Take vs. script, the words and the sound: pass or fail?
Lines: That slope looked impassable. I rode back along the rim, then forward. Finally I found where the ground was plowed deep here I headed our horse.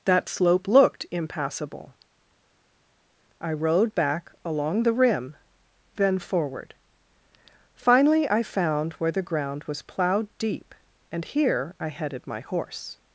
fail